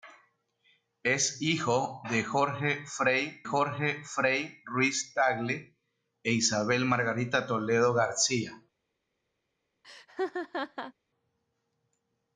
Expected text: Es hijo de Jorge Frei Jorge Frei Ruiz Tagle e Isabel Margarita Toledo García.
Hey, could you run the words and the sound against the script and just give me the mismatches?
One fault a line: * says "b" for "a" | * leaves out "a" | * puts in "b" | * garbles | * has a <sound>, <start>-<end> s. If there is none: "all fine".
* has a laugh, 9.8-10.9 s